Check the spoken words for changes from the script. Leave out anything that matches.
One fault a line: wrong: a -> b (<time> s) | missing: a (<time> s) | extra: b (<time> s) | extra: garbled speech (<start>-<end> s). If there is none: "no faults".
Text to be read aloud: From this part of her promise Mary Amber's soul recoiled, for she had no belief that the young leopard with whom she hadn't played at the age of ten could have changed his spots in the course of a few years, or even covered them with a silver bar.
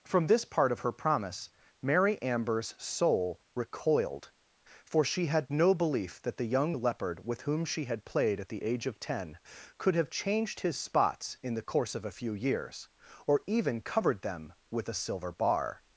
wrong: hadn't -> had (7.9 s)